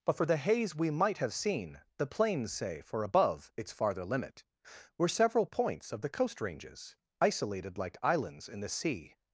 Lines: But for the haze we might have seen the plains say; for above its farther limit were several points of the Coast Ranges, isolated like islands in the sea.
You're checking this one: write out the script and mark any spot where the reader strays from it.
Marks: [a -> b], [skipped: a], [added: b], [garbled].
But for the haze we might have seen the plains say; for above its farther limit were several points of the Coast Ranges, isolated like islands in the sea.